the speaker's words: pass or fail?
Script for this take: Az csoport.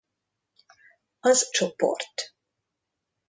pass